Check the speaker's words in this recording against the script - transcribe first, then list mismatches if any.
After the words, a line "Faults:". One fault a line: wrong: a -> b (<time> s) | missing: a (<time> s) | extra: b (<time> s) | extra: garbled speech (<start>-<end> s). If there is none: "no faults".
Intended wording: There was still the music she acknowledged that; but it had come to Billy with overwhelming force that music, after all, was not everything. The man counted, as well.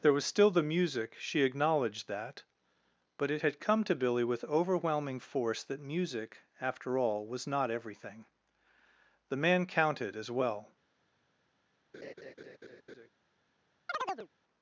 There was still the music she acknowledged that; but it had come to Billy with overwhelming force that music, after all, was not everything. The man counted, as well.
Faults:
no faults